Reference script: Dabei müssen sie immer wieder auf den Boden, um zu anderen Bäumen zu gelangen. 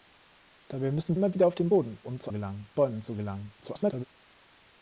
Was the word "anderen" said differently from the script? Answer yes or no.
yes